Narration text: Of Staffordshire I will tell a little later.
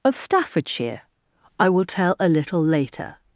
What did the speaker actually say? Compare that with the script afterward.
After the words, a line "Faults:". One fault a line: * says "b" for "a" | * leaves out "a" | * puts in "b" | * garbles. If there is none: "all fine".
Of Staffordshire I will tell a little later.
Faults:
all fine